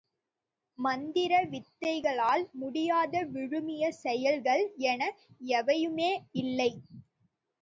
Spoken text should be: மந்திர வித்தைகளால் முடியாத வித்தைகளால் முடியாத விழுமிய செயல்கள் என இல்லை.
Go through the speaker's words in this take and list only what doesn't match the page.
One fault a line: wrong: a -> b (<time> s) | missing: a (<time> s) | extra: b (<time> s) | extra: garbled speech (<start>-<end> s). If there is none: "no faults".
missing: வித்தைகளால் முடியாத (3.2 s)
extra: எவையுமே (5.6 s)